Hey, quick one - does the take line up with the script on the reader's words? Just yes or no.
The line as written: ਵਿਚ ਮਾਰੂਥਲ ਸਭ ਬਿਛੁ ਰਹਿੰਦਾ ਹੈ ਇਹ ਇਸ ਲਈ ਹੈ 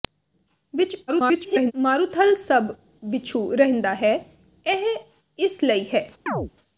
no